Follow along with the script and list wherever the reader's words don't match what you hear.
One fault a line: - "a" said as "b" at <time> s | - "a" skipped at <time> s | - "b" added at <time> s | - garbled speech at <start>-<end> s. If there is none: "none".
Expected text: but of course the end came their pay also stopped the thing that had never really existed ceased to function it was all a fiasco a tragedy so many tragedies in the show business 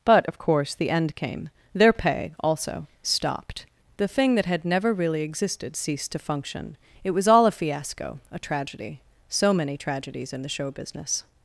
none